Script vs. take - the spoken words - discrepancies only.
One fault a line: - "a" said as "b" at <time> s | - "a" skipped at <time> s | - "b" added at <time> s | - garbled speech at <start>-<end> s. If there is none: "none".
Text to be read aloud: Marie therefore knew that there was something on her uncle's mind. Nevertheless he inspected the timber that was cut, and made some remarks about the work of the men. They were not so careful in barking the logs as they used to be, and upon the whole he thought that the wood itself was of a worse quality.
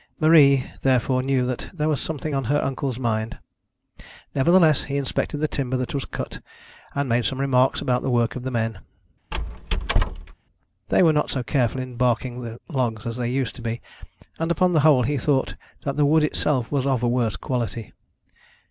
none